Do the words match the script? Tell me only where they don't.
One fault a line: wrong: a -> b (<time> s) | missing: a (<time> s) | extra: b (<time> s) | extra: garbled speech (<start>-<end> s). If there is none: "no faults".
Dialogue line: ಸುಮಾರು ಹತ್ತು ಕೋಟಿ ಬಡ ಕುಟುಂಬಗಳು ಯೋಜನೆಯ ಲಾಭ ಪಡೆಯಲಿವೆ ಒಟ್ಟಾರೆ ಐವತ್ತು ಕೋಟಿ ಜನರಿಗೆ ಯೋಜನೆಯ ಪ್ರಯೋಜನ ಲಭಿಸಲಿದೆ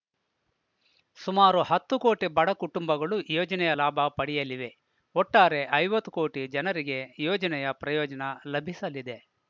no faults